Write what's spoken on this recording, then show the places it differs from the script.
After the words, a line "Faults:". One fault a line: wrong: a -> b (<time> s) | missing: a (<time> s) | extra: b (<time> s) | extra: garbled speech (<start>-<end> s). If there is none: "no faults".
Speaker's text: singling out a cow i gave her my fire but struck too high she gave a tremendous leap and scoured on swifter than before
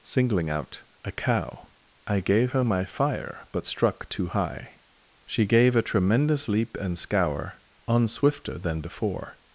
singling out a cow i gave her my fire but struck too high she gave a tremendous leap and scour on swifter than before
Faults:
wrong: scoured -> scour (7.0 s)